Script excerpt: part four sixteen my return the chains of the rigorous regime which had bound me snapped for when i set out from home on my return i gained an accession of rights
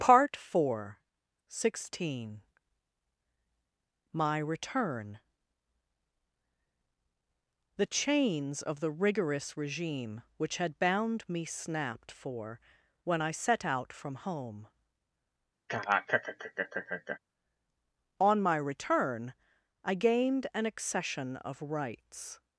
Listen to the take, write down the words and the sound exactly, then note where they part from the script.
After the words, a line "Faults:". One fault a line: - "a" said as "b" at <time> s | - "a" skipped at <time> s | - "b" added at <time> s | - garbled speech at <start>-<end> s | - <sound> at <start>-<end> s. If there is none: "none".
part four sixteen my return the chains of the rigorous regime which had bound me snapped for when i set out from home on my return i gained an accession of rights
Faults:
- laugh at 15.7-17.2 s